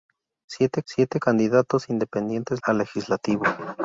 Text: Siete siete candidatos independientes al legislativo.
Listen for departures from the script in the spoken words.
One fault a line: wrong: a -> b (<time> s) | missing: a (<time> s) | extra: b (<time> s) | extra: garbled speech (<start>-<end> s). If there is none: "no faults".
no faults